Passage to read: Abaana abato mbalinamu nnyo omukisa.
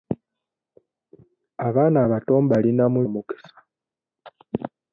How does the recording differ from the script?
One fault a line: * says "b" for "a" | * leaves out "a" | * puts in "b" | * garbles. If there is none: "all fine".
* leaves out "nnyo"